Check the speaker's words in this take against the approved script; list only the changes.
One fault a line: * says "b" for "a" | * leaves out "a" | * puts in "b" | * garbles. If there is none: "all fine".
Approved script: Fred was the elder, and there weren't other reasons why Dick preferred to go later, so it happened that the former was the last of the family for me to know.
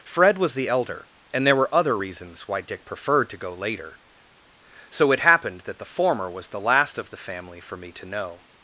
* says "were" for "weren't"